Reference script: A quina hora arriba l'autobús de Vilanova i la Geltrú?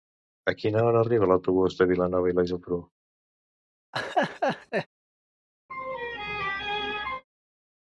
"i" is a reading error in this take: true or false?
false